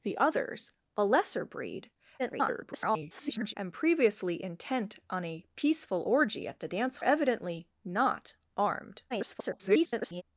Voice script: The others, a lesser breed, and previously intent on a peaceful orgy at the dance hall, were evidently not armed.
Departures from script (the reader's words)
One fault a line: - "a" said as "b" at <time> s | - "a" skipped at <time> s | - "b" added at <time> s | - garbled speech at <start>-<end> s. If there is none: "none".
- garbled speech at 2.2-3.5 s
- "hall were" skipped at 7.0 s
- garbled speech at 9.1-10.2 s